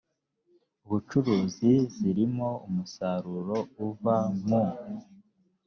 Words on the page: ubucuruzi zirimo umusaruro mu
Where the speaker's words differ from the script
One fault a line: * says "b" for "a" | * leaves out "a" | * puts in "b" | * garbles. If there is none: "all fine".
* puts in "uva"